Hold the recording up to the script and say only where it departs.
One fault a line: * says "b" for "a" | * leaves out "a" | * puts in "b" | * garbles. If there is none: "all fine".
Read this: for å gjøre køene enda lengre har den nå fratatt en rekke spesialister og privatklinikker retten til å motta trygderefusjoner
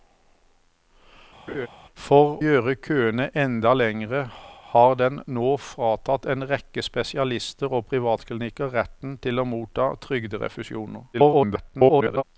* leaves out "å"
* garbles